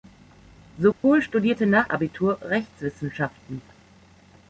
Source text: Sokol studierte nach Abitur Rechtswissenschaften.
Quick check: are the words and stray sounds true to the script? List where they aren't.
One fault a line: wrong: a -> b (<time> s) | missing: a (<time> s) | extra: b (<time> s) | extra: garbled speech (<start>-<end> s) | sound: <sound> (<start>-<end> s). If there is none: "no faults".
sound: dropout (0.9-1.0 s)